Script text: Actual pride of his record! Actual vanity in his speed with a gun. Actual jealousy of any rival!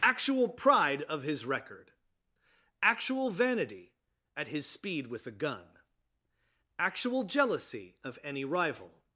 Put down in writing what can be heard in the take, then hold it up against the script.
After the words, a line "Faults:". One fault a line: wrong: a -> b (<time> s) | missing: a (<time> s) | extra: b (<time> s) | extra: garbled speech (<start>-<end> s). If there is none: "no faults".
Actual pride of his record! Actual vanity at his speed with a gun. Actual jealousy of any rival!
Faults:
wrong: in -> at (4.3 s)